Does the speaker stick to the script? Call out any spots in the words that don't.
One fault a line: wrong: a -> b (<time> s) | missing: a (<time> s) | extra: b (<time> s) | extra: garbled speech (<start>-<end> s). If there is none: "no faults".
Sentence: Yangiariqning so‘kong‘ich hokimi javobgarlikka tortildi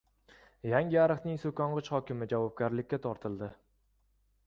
no faults